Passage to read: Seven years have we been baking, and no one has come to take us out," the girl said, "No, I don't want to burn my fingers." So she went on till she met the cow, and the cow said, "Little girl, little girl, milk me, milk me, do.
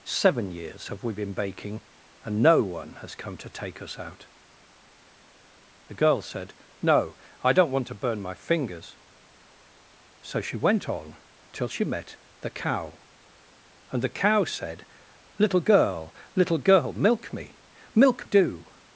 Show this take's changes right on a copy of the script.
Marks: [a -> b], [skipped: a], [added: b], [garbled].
Seven years have we been baking, and no one has come to take us out," the girl said, "No, I don't want to burn my fingers." So she went on till she met the cow, and the cow said, "Little girl, little girl, milk me, milk [skipped: me,] do.